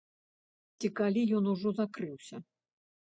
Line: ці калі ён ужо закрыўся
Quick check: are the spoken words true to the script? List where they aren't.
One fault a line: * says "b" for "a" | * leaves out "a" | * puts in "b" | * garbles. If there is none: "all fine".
all fine